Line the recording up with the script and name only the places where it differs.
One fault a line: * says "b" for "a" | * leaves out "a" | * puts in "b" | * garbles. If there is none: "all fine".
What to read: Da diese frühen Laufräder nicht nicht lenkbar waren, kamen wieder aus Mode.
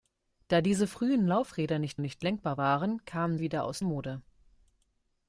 all fine